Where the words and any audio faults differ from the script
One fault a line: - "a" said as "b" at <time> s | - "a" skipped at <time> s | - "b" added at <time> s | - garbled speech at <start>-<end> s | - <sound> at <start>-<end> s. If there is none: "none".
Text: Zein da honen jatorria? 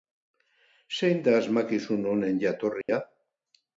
- "asmakizun" added at 1.4 s
- dropout at 2.8-2.9 s